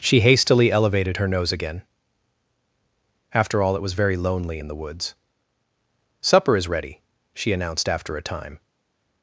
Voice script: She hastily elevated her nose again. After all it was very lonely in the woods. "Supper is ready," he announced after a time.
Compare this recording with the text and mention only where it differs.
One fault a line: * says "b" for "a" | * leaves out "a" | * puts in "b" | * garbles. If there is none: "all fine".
* says "she" for "he"